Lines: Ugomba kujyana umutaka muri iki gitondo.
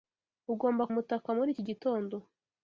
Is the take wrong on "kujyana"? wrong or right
wrong